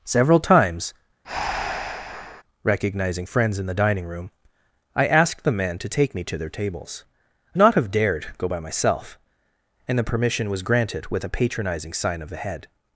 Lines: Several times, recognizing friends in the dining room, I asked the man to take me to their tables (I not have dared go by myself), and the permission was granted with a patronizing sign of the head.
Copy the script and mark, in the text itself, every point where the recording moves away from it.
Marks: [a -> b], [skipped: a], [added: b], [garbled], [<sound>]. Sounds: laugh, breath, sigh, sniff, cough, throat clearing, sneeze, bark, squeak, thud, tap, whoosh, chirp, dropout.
Several times, [breath] recognizing friends in the dining room, I asked the man to take me to their tables (I not have dared go by myself), and the permission was granted with a patronizing sign of the head.